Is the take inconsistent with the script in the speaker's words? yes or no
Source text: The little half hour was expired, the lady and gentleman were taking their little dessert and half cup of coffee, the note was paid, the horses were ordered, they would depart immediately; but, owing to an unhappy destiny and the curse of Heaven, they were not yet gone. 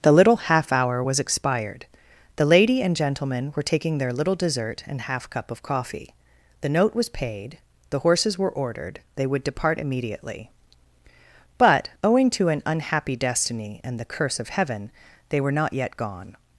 no